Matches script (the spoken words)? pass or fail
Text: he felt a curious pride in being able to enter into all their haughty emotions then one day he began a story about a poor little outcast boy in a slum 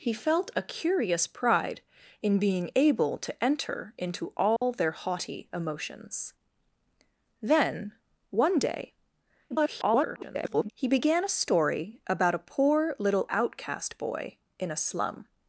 fail